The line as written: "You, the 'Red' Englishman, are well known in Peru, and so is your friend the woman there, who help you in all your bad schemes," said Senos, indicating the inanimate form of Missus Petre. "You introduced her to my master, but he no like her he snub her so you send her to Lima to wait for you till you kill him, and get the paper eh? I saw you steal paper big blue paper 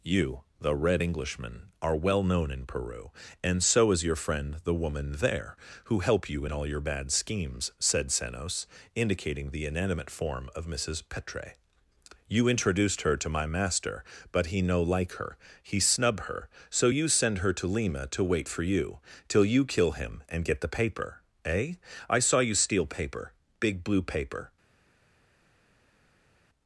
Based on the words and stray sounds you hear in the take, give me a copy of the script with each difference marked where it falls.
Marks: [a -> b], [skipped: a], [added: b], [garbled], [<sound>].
"You, the 'Red' Englishman, are well known in Peru, and so is your friend the woman there, who help you in all your bad schemes," said Senos, indicating the inanimate form of Missus Petre. "You introduced her to my master, but he no like her he snub her so you send her to Lima to wait for you till you kill him, and get the paper eh? I saw you steal paper big blue paper